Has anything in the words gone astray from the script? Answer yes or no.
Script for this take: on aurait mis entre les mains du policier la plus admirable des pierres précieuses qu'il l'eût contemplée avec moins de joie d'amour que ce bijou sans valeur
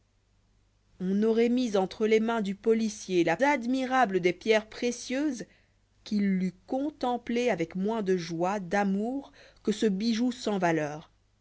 yes